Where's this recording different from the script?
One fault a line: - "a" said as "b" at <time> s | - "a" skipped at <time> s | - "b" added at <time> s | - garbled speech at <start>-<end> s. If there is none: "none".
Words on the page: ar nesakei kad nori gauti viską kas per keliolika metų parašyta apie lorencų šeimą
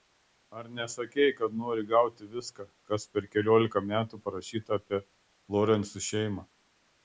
none